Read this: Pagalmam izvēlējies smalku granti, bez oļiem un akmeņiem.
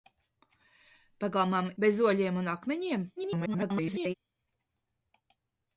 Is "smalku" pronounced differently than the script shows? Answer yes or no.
yes